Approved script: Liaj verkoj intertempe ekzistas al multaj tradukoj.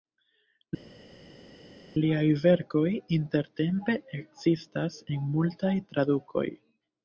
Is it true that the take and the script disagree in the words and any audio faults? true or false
true